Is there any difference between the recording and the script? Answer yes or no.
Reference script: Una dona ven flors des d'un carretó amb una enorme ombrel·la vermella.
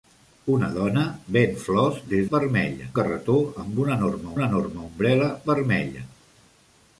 yes